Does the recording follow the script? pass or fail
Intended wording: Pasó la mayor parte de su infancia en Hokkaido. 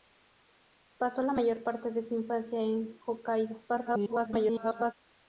fail